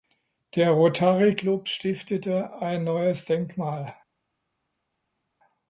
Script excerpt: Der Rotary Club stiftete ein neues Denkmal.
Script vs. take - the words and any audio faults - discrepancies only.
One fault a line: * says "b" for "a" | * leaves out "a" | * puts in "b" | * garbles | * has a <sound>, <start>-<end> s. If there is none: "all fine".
all fine